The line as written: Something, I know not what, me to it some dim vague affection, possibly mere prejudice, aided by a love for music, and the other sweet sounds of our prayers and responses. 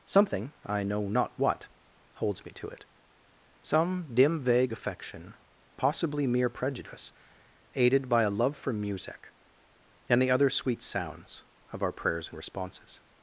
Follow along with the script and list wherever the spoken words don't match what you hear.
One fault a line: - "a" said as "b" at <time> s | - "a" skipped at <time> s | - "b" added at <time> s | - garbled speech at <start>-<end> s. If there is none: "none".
- "holds" added at 2.1 s